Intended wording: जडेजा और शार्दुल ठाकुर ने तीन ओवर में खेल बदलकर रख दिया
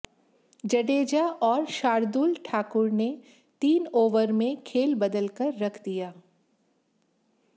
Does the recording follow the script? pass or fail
pass